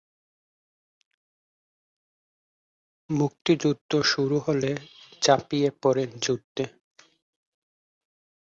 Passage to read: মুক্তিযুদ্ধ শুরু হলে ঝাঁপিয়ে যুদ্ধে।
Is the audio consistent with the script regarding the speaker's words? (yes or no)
no